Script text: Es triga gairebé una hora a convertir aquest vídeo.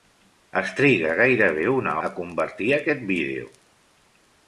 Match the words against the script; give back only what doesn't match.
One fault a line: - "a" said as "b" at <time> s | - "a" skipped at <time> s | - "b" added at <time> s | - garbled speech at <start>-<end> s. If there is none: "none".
- "hora" skipped at 1.9 s